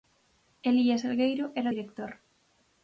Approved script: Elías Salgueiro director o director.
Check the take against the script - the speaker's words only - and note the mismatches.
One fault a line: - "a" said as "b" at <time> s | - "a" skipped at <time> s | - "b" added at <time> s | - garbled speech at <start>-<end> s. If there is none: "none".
- "director" said as "era" at 1.6 s